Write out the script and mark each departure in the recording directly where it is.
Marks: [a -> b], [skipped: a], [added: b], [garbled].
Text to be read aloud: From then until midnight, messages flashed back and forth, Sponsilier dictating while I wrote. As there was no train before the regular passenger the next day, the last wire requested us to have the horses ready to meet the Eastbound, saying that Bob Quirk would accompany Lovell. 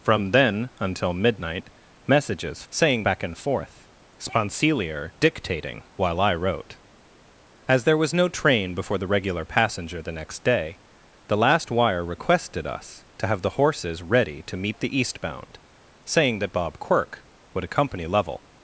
From then until midnight, messages [flashed -> saying] back and forth, Sponsilier dictating while I wrote. As there was no train before the regular passenger the next day, the last wire requested us to have the horses ready to meet the Eastbound, saying that Bob Quirk would accompany Lovell.